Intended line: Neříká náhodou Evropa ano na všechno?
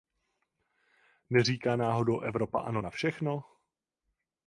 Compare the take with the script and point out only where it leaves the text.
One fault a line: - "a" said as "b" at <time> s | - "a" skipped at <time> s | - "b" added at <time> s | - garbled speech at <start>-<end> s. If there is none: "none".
none